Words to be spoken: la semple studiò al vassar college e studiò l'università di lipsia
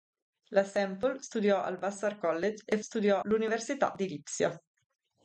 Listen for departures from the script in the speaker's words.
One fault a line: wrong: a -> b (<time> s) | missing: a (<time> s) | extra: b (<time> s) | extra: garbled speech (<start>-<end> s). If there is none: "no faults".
no faults